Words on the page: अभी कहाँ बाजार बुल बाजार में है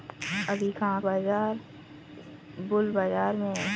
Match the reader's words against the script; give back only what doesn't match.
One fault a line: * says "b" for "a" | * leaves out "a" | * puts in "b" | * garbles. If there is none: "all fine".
all fine